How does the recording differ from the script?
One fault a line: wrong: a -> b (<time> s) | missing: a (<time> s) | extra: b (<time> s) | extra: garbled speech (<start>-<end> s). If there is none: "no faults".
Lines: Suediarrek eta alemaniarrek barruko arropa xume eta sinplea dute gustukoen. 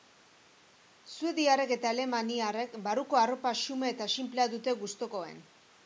no faults